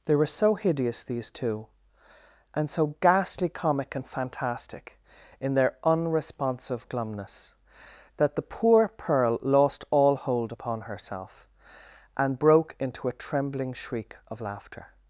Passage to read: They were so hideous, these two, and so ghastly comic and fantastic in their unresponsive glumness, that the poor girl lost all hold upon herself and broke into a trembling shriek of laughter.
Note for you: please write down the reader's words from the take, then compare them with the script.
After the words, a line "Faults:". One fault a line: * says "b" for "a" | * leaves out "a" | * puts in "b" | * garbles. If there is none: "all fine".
They were so hideous, these two, and so ghastly comic and fantastic in their unresponsive glumness, that the poor pearl lost all hold upon herself and broke into a trembling shriek of laughter.
Faults:
* says "pearl" for "girl"